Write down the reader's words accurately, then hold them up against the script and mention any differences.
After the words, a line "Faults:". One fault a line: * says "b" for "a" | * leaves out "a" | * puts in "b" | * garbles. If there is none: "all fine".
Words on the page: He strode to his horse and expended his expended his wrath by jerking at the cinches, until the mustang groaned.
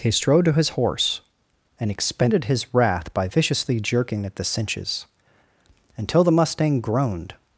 He strode to his horse and expended his wrath by viciously jerking at the cinches, until the mustang groaned.
Faults:
* leaves out "expended his"
* puts in "viciously"